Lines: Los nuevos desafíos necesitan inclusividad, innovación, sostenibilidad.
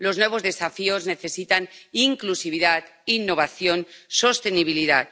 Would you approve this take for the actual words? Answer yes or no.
yes